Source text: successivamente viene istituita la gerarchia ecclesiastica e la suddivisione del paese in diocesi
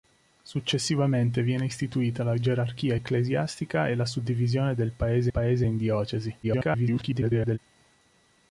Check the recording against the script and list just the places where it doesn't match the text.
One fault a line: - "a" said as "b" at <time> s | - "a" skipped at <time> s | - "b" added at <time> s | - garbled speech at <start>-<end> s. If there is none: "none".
- "paese" added at 5.3 s
- garbled speech at 6.4-7.6 s